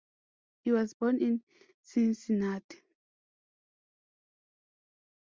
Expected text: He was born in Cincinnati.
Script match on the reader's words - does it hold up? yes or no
yes